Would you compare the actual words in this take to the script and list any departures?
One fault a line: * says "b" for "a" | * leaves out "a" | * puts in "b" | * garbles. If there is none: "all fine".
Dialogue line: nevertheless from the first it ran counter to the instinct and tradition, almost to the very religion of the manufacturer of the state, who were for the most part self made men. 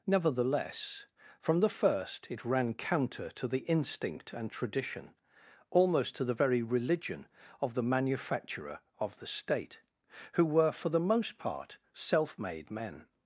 all fine